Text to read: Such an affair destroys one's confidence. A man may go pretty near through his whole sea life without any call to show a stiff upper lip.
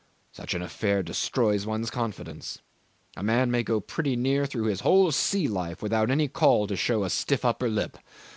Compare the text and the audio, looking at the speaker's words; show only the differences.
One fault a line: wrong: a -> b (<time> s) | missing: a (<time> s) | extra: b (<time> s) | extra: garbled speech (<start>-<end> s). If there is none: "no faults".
no faults